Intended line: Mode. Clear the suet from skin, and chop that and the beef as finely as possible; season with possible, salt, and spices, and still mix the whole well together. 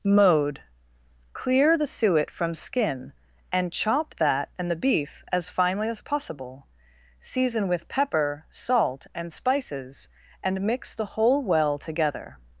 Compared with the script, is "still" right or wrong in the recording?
wrong